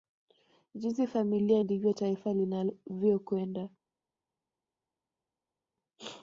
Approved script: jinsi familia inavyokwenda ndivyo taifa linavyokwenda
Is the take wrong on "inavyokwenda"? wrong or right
wrong